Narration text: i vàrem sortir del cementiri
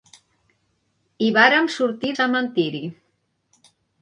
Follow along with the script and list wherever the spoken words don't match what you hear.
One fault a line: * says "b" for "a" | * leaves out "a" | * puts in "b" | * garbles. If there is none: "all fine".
* leaves out "del"